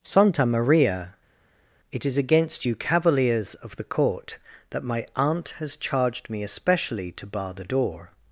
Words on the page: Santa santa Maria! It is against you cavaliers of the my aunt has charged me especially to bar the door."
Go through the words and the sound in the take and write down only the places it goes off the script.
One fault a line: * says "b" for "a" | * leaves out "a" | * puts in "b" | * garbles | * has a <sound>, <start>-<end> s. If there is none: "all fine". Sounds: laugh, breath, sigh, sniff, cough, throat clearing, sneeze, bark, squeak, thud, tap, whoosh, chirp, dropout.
* leaves out "santa"
* puts in "court that"